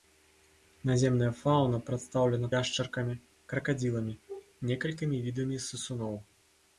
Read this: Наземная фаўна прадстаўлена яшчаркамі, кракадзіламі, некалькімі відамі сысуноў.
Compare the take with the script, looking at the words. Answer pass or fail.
pass